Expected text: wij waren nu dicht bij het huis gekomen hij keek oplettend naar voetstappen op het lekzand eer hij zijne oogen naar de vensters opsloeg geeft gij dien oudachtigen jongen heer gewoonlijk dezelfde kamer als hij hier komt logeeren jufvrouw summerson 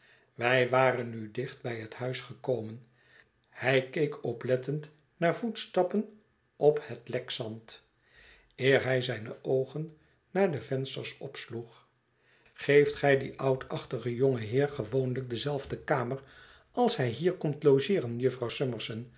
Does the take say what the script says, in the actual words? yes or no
yes